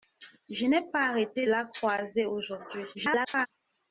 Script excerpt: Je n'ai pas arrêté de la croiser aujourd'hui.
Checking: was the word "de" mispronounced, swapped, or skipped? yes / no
yes